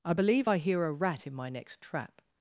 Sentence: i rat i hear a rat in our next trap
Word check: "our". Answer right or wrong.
wrong